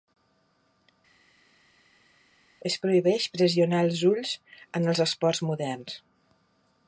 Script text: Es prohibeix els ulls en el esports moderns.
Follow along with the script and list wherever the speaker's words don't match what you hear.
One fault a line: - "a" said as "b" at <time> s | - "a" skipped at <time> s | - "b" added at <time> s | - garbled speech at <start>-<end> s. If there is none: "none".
- "pressionar" added at 3.4 s
- "el" said as "els" at 4.9 s